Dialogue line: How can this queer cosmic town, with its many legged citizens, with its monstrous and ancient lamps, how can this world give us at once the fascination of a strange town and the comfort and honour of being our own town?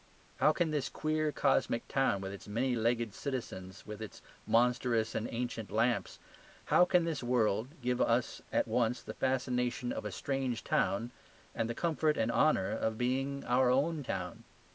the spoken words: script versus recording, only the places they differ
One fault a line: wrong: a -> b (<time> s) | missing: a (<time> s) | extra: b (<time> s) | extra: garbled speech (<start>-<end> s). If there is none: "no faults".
no faults